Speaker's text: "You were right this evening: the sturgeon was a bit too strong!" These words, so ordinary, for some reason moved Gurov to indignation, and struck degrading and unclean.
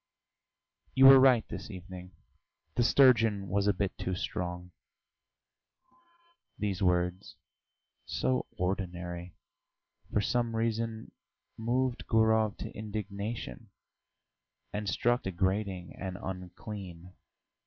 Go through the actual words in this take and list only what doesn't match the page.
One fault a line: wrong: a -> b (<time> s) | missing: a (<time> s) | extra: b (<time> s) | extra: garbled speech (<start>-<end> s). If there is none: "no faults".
no faults